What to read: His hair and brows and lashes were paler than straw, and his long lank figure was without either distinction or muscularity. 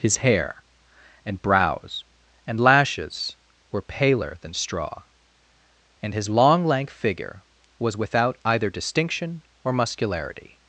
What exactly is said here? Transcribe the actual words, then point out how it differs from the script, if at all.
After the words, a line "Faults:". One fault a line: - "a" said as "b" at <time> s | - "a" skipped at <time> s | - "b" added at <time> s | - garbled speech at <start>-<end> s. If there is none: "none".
His hair and brows and lashes were paler than straw, and his long lank figure was without either distinction or muscularity.
Faults:
none